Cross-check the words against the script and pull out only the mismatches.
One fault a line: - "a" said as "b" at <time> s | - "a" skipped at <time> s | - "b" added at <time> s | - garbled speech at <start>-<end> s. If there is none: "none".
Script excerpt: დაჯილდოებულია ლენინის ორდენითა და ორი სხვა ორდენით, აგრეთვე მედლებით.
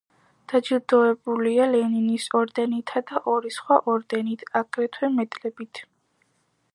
none